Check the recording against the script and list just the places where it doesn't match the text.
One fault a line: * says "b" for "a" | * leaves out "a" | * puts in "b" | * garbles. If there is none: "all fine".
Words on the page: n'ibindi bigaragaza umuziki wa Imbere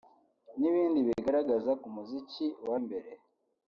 all fine